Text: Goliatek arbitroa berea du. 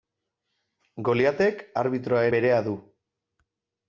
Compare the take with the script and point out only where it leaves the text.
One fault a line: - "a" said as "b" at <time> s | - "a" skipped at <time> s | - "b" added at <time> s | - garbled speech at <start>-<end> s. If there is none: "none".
none